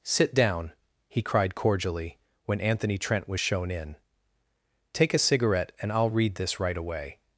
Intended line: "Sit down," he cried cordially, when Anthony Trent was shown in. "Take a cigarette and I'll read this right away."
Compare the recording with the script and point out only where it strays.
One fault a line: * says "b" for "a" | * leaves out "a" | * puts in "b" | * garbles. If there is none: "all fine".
all fine